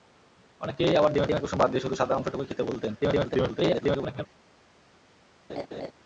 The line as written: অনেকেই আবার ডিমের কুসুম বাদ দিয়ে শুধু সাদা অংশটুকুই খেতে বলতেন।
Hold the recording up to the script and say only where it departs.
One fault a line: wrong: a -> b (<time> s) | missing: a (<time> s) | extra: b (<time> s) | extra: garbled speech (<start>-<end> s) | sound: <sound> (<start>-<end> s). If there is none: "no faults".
extra: ডিমের (1.3 s)
extra: garbled speech (3.0-4.3 s)
sound: laugh (5.5-5.9 s)